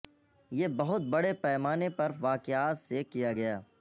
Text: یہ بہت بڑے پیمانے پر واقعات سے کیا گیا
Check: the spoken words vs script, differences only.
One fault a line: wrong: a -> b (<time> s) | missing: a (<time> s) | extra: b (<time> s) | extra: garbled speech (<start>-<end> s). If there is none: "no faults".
no faults